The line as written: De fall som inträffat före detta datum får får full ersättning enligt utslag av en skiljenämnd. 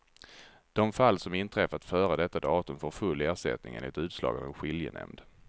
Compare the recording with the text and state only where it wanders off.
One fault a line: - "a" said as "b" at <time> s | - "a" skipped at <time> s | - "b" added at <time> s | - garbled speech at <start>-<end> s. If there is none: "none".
- "får" skipped at 2.9 s